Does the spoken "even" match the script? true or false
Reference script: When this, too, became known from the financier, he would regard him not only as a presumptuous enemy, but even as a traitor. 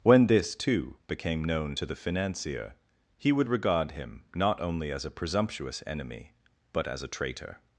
false